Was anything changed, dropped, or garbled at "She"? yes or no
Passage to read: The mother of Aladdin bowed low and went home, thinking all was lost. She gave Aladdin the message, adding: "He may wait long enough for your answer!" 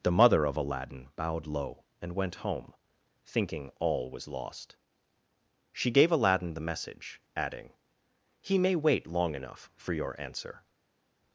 no